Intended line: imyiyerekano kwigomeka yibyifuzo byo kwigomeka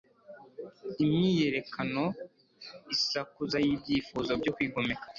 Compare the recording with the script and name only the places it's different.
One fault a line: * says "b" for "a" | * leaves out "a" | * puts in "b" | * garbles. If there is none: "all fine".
* says "isakuza" for "kwigomeka"